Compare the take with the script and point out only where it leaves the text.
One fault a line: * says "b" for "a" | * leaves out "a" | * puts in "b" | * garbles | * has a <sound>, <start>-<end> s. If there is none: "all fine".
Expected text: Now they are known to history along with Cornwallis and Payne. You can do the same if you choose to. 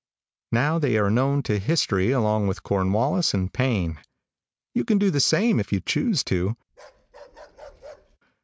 * has a bark, 6.7-8.2 s